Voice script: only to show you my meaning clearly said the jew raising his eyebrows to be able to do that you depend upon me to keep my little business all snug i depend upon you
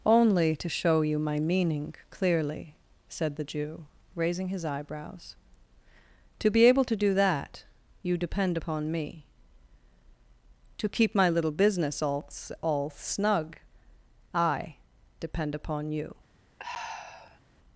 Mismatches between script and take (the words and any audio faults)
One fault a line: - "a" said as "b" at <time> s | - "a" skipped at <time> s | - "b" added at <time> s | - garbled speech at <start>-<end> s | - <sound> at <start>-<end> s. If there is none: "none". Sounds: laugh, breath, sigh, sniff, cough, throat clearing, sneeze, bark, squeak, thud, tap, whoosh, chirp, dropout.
- "all" added at 12.6 s
- sigh at 16.6-17.4 s